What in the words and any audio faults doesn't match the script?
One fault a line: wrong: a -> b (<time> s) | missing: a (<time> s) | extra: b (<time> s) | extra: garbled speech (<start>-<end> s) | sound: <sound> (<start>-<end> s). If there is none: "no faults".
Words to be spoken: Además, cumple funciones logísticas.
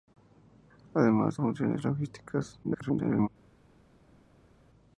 missing: cumple (1.4 s)
extra: garbled speech (2.6-3.3 s)